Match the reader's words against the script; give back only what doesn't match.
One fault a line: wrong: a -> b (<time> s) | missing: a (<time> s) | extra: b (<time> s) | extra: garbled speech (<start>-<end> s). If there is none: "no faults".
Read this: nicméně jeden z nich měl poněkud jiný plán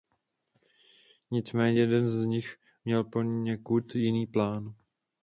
no faults